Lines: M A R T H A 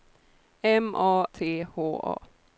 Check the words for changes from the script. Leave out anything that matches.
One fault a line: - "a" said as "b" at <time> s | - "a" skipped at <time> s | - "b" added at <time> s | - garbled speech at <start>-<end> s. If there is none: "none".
- "R" skipped at 1.3 s